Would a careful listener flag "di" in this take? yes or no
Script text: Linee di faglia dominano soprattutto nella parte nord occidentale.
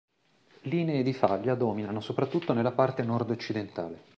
no